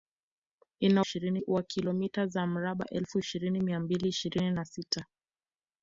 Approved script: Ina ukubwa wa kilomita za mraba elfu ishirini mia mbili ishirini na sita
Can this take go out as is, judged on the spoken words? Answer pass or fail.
fail